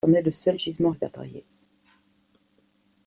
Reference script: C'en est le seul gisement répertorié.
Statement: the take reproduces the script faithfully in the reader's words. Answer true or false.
true